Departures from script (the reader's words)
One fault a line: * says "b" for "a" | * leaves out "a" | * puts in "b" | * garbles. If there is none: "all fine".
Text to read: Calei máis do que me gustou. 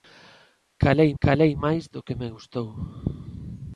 * puts in "calei"